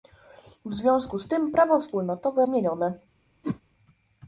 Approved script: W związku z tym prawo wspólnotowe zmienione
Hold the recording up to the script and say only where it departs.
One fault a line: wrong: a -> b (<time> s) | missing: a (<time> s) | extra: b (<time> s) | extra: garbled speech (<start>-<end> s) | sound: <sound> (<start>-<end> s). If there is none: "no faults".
sound: whoosh (3.4-3.6 s)